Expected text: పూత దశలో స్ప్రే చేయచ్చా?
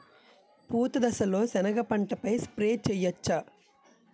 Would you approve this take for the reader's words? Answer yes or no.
no